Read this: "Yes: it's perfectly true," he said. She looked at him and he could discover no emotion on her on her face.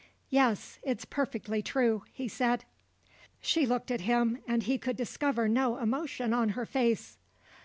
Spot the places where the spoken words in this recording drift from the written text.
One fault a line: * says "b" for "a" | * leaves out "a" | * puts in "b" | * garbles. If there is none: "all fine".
* leaves out "on her"